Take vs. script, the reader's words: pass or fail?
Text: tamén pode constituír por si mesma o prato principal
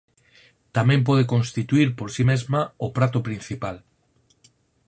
pass